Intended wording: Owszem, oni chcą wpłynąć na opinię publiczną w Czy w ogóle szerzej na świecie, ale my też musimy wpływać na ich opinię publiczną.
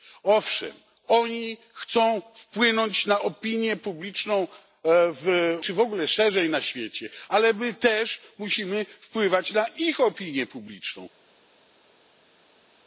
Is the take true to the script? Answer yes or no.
yes